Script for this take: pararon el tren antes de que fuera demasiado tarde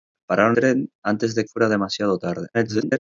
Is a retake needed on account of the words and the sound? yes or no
yes